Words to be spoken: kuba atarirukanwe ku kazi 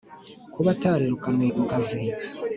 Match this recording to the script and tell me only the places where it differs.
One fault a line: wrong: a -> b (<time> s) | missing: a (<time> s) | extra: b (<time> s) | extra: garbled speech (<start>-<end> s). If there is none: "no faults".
no faults